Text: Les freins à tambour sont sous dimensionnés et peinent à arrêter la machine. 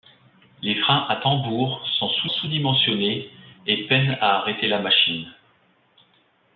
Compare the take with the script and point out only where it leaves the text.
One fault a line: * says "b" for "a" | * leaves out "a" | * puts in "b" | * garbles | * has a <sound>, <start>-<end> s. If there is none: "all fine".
* puts in "sous"